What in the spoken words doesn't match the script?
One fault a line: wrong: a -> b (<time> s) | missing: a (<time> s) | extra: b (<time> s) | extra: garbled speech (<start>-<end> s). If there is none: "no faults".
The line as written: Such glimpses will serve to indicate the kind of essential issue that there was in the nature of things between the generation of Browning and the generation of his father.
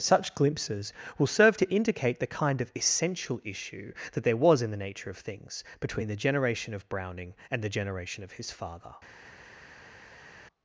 no faults